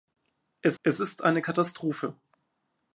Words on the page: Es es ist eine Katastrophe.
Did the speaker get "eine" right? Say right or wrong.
right